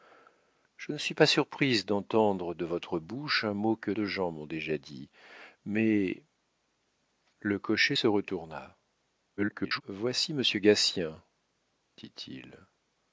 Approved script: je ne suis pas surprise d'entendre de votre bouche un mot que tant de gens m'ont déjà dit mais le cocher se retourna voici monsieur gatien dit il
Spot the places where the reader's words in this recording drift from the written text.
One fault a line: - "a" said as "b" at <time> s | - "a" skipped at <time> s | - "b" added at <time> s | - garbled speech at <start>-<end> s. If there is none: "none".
- "tant" skipped at 3.9 s
- garbled speech at 9.4-9.8 s